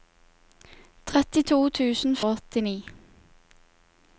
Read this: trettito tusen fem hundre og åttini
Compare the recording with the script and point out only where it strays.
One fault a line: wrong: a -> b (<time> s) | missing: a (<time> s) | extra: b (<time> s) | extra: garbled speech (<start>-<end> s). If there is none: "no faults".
missing: fem hundre (2.2 s)